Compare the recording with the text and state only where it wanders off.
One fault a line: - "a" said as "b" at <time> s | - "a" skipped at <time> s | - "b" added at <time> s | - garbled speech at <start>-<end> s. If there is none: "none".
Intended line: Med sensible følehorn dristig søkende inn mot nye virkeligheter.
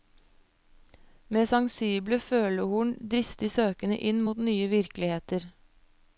none